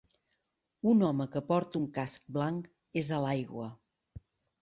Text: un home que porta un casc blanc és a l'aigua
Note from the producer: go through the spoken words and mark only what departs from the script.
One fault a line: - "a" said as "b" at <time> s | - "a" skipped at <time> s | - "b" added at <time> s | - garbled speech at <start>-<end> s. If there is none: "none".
none